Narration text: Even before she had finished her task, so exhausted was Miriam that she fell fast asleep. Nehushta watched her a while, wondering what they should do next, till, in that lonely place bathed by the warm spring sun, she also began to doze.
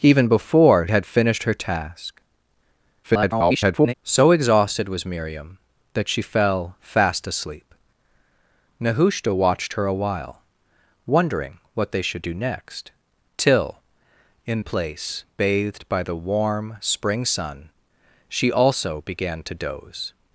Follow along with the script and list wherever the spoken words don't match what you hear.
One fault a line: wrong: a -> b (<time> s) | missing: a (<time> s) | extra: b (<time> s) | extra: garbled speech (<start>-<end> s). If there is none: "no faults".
missing: she (0.9 s)
extra: garbled speech (3.0-3.9 s)
missing: that lonely (14.6 s)